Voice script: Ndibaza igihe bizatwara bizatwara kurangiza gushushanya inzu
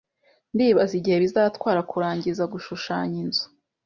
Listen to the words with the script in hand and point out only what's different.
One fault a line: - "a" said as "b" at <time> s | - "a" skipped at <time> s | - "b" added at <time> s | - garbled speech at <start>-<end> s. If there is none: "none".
- "bizatwara" skipped at 1.8 s